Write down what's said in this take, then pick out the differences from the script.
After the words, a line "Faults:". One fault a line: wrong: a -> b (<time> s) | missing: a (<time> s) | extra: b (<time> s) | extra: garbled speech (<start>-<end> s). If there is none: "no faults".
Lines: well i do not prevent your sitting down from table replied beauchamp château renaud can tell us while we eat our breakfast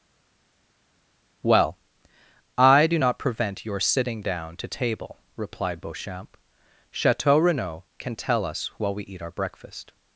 well i do not prevent your sitting down to table replied beauchamp château renaud can tell us while we eat our breakfast
Faults:
wrong: from -> to (4.6 s)